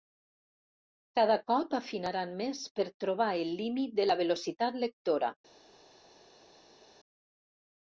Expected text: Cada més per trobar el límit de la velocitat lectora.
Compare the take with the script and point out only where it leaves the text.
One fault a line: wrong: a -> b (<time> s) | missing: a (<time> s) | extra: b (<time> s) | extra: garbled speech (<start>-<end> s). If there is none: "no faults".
extra: cop afinaran (1.5 s)